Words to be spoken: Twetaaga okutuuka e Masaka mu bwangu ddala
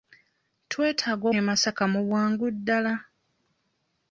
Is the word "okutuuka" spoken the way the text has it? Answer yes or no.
no